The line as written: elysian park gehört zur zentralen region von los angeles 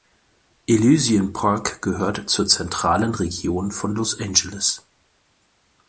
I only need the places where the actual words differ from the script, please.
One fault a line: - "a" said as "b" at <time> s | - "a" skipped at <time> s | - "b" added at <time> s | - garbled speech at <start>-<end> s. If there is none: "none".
none